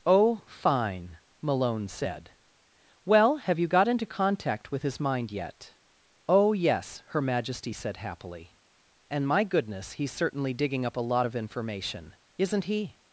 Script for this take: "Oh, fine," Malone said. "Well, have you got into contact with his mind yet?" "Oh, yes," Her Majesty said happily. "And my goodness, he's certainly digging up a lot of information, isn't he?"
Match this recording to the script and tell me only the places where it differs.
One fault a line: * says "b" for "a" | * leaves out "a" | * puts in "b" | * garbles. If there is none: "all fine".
all fine